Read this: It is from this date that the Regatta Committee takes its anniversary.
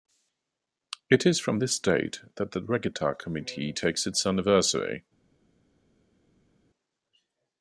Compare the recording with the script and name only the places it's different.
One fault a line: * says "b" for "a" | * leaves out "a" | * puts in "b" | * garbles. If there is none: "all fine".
all fine